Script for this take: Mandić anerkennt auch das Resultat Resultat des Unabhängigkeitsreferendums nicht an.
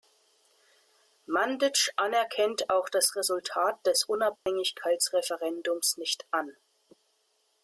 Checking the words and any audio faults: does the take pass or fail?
fail